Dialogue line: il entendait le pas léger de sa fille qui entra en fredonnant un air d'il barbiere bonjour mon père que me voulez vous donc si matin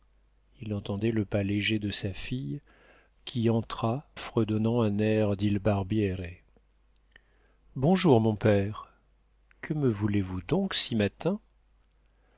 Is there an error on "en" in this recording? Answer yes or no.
yes